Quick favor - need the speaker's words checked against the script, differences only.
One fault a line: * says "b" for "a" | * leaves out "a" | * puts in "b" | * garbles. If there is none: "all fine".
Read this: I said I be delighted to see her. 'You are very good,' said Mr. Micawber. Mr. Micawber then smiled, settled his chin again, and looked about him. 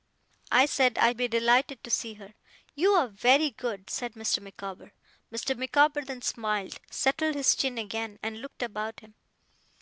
all fine